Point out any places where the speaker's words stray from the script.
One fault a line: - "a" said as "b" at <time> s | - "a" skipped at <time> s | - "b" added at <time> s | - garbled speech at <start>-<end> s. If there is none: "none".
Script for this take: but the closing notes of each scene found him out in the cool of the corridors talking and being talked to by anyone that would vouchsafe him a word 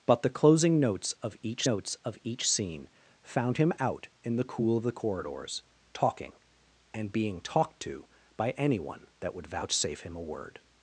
- "notes of each" added at 1.6 s